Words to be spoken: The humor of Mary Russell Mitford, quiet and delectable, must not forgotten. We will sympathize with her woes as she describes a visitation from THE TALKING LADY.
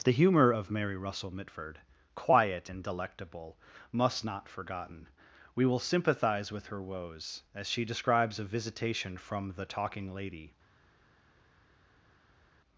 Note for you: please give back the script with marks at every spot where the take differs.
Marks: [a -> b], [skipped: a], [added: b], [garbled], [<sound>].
The humor of Mary Russell Mitford, quiet and delectable, must not forgotten. We will sympathize with her woes as she describes a visitation from THE TALKING LADY.